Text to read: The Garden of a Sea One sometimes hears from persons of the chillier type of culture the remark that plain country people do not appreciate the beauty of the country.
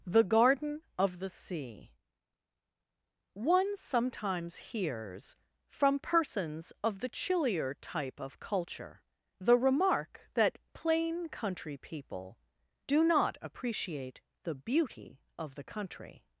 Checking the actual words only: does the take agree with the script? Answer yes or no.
no